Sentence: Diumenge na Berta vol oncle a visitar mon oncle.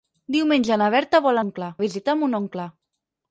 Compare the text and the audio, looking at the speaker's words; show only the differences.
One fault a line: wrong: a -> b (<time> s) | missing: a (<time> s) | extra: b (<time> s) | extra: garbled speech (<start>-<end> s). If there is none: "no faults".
no faults